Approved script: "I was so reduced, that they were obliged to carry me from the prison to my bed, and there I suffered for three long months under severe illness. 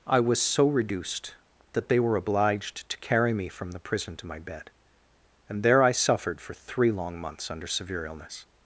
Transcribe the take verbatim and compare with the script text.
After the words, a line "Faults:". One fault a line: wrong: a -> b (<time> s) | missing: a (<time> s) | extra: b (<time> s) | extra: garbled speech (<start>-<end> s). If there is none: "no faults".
"I was so reduced, that they were obliged to carry me from the prison to my bed, and there I suffered for three long months under severe illness.
Faults:
no faults